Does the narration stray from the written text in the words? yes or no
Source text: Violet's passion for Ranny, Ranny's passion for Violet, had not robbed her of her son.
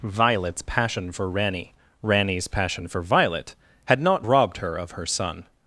no